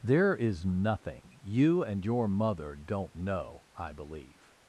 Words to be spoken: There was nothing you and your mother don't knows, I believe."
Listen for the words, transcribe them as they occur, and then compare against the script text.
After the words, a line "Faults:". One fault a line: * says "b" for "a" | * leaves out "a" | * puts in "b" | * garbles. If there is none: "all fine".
There is nothing you and your mother don't know, I believe."
Faults:
* says "is" for "was"
* says "know" for "knows"